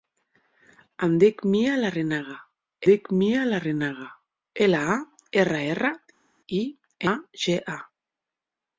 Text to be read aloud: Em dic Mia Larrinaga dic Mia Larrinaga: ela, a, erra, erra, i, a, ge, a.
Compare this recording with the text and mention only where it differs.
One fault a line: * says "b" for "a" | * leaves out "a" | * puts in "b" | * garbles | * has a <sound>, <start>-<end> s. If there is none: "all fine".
all fine